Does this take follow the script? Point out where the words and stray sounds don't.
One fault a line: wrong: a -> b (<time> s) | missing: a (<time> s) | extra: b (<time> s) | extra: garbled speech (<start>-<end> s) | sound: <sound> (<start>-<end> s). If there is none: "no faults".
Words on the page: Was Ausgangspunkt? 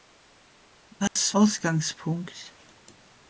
sound: dropout (1.1-1.2 s)